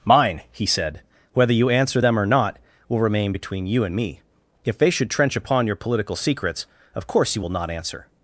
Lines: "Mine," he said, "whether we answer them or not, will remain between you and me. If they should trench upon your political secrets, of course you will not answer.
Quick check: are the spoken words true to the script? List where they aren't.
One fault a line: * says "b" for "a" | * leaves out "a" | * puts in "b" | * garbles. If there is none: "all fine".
* says "you" for "we"